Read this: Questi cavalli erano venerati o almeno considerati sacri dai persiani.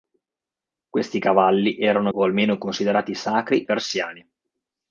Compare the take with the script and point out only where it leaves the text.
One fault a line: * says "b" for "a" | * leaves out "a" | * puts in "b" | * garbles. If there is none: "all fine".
* leaves out "venerati"
* leaves out "dai"